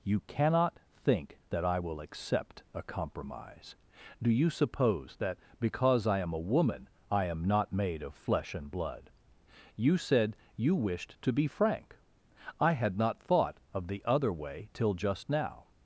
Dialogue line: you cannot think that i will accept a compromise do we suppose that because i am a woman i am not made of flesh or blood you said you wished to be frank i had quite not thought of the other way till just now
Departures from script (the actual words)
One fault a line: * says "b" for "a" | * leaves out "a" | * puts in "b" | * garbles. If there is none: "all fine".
* says "you" for "we"
* says "and" for "or"
* leaves out "quite"